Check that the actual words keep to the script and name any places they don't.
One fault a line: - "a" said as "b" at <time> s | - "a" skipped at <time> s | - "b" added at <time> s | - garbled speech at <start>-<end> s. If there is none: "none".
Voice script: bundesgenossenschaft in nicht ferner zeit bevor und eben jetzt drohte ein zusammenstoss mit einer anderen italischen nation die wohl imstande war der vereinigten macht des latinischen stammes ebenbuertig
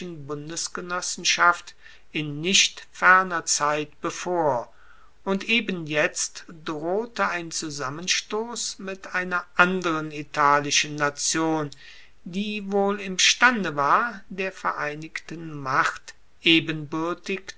- "des latinischen stammes" skipped at 16.1 s